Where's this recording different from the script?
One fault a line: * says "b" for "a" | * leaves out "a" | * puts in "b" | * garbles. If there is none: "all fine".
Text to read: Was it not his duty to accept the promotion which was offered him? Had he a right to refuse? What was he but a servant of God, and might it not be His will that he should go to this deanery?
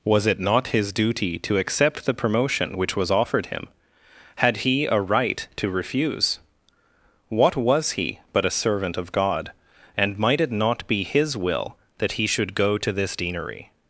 all fine